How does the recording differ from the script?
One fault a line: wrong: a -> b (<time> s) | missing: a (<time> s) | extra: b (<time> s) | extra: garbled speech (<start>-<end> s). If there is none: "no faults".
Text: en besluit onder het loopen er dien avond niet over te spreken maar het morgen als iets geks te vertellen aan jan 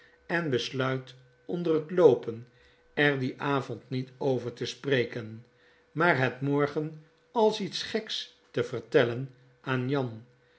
no faults